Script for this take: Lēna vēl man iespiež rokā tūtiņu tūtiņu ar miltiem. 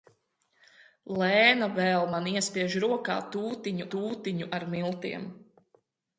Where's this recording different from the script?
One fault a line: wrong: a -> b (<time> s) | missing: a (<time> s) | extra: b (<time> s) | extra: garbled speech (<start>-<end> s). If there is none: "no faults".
no faults